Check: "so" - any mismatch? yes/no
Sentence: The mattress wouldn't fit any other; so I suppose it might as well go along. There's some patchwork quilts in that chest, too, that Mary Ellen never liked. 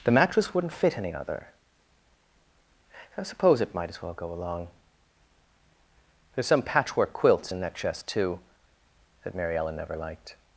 yes